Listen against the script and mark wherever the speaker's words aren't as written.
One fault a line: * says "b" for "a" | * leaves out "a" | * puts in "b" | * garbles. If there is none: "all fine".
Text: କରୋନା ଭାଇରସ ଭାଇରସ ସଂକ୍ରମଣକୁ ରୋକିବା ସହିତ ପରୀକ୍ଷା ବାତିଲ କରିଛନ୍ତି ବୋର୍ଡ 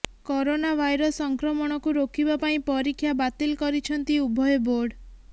* leaves out "ଭାଇରସ"
* says "ପାଇଁ" for "ସହିତ"
* puts in "ଉଭୟ"